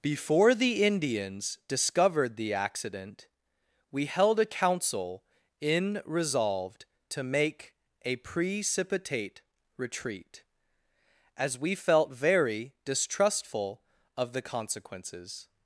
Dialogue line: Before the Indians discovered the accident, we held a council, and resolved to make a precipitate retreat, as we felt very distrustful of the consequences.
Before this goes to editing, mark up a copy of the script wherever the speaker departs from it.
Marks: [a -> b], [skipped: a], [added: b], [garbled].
Before the Indians discovered the accident, we held a council, [and -> in] resolved to make a precipitate retreat, as we felt very distrustful of the consequences.